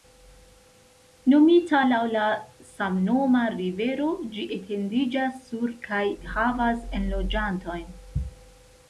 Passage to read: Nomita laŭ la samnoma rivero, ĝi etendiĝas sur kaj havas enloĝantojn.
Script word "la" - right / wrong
right